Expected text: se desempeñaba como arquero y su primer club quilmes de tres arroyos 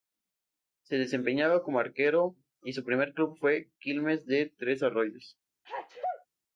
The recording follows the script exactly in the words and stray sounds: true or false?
false